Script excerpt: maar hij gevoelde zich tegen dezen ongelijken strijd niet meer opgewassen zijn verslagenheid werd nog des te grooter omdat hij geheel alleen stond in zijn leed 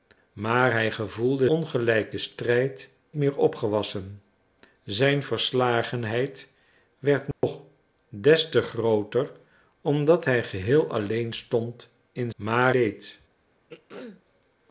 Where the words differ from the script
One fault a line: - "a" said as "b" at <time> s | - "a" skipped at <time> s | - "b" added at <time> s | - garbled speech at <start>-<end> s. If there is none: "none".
- "zich tegen dezen" skipped at 1.5 s
- "niet" skipped at 2.9 s
- "zijn" said as "maar" at 12.4 s